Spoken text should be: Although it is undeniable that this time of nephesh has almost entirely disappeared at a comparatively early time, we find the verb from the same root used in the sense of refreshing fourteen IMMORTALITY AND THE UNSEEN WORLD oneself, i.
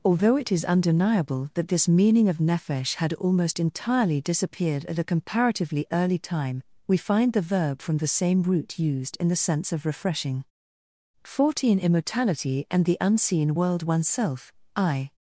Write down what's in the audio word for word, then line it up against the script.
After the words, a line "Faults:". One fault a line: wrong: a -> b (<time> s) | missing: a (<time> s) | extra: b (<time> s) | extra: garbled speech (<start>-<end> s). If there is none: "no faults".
Although it is undeniable that this meaning of nephesh had almost entirely disappeared at a comparatively early time, we find the verb from the same root used in the sense of refreshing fourteen IMMORTALITY AND THE UNSEEN WORLD oneself, i.
Faults:
wrong: time -> meaning (1.9 s)
wrong: has -> had (3.0 s)